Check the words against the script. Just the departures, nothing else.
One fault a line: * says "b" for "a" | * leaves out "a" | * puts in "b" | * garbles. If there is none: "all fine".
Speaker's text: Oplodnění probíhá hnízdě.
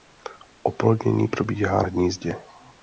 all fine